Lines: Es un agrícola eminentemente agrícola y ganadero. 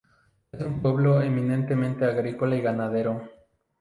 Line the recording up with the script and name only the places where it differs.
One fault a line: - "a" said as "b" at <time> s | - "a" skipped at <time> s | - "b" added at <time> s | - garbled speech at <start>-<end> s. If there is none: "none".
- "agrícola" said as "pueblo" at 0.8 s